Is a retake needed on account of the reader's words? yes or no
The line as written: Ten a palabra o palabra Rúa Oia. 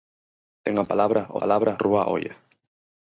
no